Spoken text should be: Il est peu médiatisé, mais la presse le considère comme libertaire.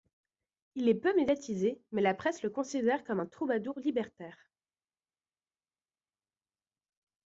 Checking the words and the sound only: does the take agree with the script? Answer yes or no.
no